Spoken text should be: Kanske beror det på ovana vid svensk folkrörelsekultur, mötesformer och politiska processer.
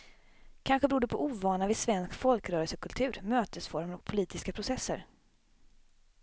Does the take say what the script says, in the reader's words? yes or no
yes